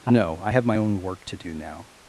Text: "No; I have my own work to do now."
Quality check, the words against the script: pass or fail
pass